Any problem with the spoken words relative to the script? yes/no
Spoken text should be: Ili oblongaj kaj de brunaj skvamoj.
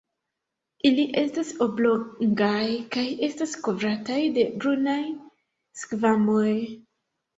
yes